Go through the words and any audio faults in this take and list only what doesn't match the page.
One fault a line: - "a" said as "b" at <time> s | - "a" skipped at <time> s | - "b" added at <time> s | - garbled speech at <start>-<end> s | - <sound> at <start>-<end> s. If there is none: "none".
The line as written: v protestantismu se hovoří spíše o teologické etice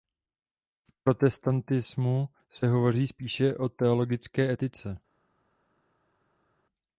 none